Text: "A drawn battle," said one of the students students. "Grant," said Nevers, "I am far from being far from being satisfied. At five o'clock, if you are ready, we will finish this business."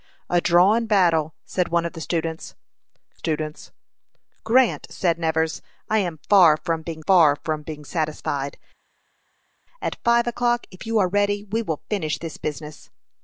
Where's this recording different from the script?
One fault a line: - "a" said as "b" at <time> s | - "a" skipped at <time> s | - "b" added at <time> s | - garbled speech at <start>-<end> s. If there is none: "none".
none